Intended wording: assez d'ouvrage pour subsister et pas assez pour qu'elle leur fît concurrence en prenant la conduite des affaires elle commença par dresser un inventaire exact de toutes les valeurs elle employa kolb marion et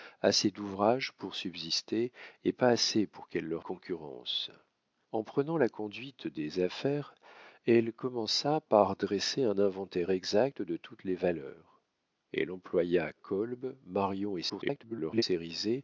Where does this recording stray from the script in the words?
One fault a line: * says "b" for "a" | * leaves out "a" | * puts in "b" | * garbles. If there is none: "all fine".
* leaves out "fît"
* garbles